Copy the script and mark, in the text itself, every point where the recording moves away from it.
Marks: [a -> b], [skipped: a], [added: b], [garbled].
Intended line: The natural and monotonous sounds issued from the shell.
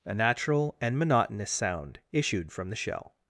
[The -> A] natural and monotonous [sounds -> sound] issued from the shell.